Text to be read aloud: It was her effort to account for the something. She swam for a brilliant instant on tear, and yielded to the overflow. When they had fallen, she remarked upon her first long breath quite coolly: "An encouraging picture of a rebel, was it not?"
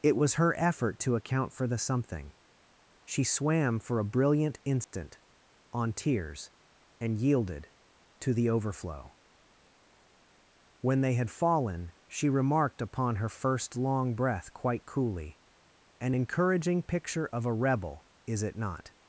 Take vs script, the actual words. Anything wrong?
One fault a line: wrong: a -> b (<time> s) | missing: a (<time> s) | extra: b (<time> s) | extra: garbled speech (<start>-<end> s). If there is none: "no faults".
wrong: tear -> tears (5.9 s)
wrong: was -> is (18.3 s)